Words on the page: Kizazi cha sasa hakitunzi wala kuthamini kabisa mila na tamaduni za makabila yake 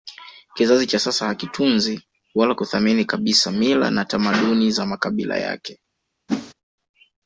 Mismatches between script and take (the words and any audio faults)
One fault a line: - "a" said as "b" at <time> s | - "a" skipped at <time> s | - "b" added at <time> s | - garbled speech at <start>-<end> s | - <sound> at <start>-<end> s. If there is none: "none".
- whoosh at 6.3-6.5 s